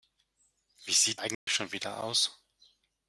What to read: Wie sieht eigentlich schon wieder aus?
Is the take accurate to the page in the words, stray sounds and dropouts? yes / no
no